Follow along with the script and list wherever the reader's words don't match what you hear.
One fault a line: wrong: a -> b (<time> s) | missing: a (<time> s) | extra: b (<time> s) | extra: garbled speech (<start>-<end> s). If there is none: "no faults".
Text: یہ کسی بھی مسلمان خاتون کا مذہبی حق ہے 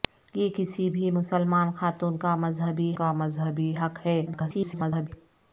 extra: کا مذہبی (2.9 s)
extra: garbled speech (4.3-5.1 s)